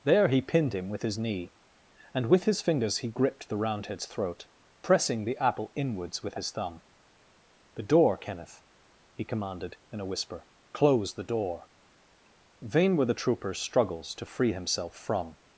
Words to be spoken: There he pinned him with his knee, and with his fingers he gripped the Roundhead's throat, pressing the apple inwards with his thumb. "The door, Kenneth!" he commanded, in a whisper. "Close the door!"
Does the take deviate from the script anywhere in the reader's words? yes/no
yes